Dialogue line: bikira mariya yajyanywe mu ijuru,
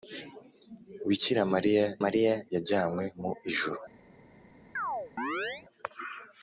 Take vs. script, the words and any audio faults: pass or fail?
fail